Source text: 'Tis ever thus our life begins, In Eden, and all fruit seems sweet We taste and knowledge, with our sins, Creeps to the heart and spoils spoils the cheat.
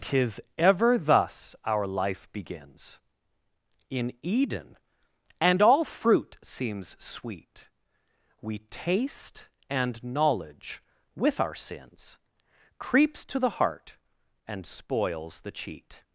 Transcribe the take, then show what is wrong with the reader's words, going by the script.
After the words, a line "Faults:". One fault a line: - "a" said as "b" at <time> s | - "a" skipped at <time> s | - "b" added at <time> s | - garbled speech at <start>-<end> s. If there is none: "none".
'Tis ever thus our life begins, In Eden, and all fruit seems sweet We taste and knowledge, with our sins, Creeps to the heart and spoils the cheat.
Faults:
- "spoils" skipped at 15.4 s